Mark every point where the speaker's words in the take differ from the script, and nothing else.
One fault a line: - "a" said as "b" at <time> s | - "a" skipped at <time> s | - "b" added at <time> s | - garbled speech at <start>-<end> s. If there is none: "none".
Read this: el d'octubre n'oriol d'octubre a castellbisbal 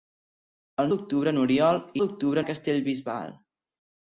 none